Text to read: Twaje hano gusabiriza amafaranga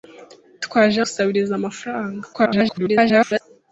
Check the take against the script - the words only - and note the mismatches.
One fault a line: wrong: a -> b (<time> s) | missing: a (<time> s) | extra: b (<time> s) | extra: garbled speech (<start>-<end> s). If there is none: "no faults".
missing: hano (1.0 s)
extra: garbled speech (2.3-3.4 s)